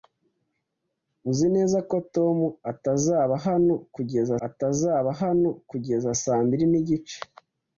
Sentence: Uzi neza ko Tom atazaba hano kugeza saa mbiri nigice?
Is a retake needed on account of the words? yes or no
yes